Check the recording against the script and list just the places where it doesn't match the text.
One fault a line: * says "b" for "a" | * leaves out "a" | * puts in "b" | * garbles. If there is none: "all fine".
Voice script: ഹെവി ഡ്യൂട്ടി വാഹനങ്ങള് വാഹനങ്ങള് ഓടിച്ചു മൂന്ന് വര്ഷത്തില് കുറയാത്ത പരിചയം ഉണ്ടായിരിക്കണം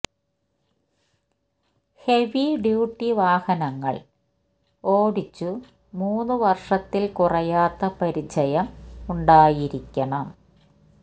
* leaves out "വാഹനങ്ങള്"